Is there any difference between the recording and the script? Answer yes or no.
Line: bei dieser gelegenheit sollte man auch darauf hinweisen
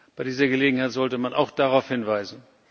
no